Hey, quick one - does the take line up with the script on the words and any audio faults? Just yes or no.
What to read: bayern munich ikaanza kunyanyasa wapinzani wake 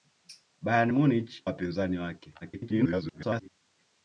no